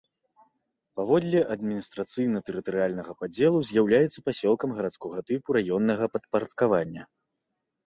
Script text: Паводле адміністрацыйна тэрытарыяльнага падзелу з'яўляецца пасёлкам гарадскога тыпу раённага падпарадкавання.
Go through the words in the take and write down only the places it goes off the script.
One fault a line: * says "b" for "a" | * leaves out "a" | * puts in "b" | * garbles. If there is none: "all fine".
all fine